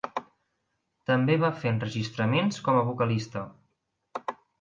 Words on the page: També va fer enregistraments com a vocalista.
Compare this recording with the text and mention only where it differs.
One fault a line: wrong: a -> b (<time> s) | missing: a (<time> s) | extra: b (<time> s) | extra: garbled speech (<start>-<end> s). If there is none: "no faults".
no faults